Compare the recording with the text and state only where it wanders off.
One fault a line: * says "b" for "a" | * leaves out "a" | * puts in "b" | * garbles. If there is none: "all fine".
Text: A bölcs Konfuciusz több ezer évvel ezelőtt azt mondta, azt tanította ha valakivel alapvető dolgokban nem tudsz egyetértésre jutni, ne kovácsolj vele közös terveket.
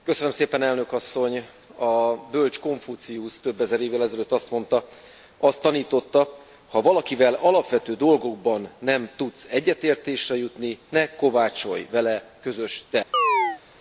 all fine